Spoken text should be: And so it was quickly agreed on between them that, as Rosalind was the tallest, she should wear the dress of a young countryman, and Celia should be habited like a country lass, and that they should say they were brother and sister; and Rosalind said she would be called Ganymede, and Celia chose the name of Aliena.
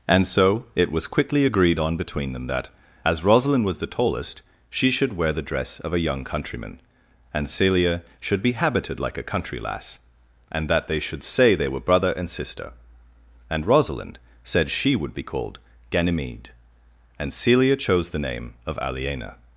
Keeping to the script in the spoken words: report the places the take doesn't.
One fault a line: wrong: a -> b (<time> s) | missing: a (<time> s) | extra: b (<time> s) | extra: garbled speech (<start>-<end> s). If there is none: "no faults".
no faults